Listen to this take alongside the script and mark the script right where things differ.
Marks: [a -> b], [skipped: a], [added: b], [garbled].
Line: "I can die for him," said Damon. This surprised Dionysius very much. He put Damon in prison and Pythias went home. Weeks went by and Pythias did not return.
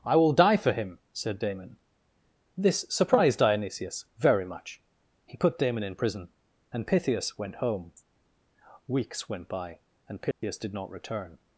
"I [can -> will] die for him," said Damon. This surprised Dionysius very much. He put Damon in prison and Pythias went home. Weeks went by and Pythias did not return.